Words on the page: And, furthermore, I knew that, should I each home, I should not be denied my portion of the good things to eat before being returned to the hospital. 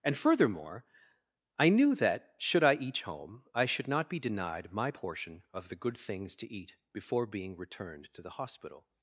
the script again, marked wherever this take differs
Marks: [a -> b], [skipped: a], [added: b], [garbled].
And, furthermore, I knew that, should I each home, I should not be denied my portion of the good things to eat before being returned to the hospital.